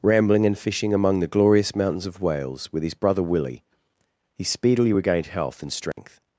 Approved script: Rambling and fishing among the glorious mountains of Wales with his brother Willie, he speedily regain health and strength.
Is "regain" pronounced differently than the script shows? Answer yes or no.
yes